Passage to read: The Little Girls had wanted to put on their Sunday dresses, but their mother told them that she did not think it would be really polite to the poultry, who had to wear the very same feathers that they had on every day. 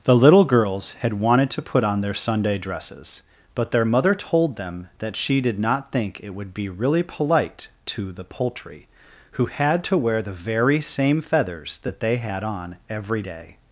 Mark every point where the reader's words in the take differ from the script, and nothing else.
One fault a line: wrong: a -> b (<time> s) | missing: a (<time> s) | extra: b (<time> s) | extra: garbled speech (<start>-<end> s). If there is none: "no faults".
no faults